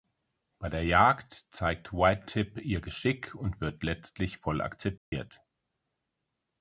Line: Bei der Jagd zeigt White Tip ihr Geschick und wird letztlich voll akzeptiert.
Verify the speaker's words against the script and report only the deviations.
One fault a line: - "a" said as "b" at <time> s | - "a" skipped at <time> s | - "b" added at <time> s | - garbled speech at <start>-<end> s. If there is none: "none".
none